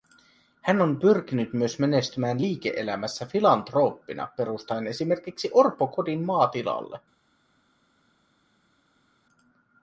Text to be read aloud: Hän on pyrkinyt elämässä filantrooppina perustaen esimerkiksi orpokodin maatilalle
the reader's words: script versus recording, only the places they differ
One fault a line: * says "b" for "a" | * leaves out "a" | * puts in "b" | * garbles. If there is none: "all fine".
* puts in "myös menestymään liike"